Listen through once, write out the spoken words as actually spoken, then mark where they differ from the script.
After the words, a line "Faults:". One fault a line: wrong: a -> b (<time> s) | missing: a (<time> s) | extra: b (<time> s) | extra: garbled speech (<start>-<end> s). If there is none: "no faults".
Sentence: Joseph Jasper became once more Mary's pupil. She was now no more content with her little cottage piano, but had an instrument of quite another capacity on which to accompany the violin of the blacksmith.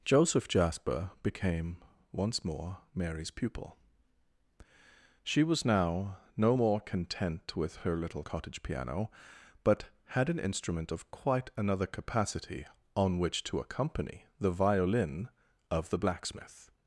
Joseph Jasper became once more Mary's pupil. She was now no more content with her little cottage piano, but had an instrument of quite another capacity on which to accompany the violin of the blacksmith.
Faults:
no faults